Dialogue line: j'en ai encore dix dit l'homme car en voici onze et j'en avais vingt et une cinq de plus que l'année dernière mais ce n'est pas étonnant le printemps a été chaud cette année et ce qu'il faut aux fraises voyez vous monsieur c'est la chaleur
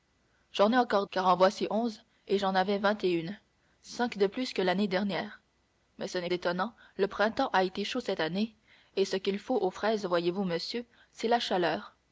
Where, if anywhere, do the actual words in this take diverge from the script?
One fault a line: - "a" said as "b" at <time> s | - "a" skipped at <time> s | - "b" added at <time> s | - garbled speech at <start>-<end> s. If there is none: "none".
- "dix dit l'homme" skipped at 1.1 s
- "pas" skipped at 6.3 s